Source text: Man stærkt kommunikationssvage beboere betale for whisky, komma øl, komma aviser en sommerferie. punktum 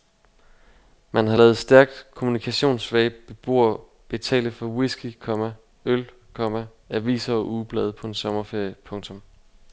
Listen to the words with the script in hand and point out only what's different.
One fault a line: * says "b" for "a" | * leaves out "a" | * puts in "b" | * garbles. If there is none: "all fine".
* puts in "har ladet"
* puts in "og ugeblade på"